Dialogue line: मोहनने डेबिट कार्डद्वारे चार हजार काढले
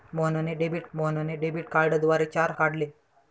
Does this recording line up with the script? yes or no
no